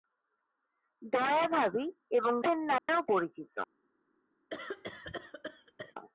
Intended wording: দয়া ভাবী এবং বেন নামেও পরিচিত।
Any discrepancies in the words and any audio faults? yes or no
yes